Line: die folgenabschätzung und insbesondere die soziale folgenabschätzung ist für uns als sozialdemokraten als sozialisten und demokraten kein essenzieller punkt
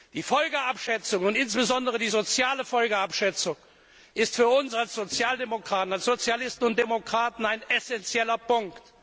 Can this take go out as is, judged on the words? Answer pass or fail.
fail